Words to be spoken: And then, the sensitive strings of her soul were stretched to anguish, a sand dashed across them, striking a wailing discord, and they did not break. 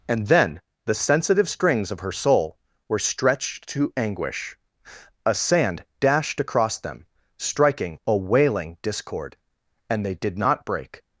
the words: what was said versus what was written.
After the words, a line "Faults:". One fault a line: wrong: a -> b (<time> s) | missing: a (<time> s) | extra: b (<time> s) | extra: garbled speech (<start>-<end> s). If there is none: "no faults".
And then, the sensitive strings of her soul were stretched to anguish, a sand dashed across them, striking a wailing discord, and they did not break.
Faults:
no faults